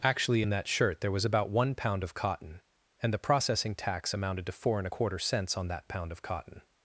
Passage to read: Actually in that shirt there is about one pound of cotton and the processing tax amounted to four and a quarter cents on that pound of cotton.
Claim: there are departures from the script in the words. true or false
true